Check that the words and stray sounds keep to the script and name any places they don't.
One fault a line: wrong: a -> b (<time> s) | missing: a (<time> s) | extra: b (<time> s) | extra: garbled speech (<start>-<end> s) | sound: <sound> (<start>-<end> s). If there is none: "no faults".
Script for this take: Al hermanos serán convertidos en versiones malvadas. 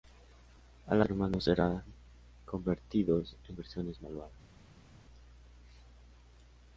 no faults